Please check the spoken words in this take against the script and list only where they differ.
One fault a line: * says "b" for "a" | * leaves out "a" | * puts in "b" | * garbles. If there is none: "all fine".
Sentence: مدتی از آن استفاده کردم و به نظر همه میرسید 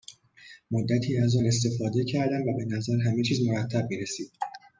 * puts in "چیز مرتب"